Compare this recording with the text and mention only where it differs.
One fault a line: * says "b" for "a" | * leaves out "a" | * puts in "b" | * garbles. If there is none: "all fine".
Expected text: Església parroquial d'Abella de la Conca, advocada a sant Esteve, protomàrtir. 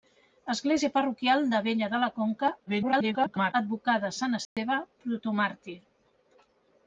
* garbles